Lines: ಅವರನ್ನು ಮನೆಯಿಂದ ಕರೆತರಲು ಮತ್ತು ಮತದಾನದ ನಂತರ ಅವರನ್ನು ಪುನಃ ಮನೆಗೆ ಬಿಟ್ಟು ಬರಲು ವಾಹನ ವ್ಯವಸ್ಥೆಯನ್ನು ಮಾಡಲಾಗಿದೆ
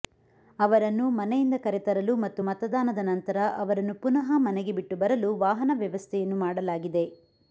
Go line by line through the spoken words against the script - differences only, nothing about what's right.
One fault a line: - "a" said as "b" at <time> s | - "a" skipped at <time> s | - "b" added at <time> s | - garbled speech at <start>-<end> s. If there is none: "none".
none